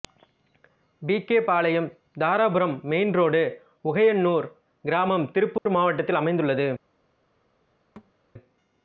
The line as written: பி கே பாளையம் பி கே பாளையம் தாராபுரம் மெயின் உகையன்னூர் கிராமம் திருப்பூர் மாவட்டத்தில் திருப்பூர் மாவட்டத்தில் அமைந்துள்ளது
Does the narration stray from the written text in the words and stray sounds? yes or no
yes